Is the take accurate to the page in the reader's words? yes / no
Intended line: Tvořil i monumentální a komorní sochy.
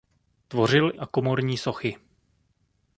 no